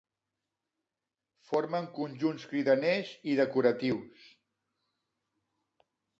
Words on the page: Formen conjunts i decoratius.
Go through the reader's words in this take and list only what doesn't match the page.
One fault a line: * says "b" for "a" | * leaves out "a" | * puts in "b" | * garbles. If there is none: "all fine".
* puts in "cridaners"